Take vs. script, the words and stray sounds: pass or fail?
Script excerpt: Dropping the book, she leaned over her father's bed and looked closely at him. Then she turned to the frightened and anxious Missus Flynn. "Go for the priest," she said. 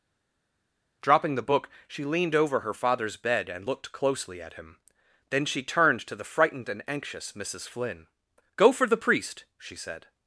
pass